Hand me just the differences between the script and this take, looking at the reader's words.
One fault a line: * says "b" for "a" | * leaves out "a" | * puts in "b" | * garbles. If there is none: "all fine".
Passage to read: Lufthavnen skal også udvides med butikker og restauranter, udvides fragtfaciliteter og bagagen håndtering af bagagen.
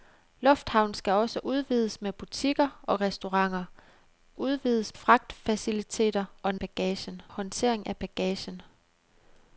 all fine